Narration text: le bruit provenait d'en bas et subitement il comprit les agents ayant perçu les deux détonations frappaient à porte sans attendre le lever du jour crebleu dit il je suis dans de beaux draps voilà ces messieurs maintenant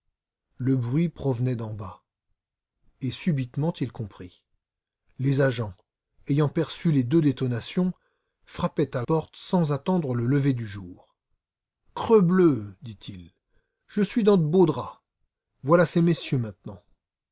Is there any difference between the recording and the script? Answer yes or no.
no